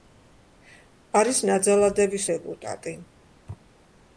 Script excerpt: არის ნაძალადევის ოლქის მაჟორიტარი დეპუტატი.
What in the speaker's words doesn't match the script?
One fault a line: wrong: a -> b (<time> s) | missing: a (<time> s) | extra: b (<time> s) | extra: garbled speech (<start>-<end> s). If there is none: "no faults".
missing: ოლქის მაჟორიტარი (2.2 s)